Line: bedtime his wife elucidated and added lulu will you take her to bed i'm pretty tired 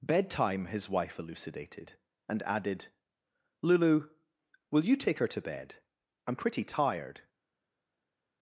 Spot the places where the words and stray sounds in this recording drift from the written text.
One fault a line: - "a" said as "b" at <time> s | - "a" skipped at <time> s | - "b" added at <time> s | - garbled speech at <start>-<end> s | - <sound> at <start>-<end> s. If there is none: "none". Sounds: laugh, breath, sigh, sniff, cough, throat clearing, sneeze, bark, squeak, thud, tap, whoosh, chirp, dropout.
none